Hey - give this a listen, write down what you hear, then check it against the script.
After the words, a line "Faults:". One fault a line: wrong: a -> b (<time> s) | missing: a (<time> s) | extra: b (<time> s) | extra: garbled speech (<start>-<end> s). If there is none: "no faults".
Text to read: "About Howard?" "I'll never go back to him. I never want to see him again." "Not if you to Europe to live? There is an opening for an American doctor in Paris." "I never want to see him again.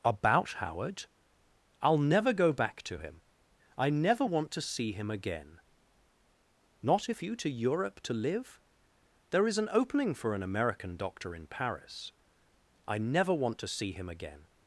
"About Howard?" "I'll never go back to him. I never want to see him again." "Not if you to Europe to live? There is an opening for an American doctor in Paris." "I never want to see him again.
Faults:
no faults